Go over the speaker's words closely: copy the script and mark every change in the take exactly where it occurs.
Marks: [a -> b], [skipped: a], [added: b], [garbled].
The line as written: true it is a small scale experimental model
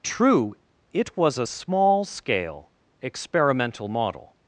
true it [is -> was] a small scale experimental model